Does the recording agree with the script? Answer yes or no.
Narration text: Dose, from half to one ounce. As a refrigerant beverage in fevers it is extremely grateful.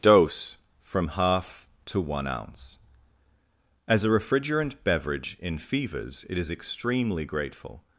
yes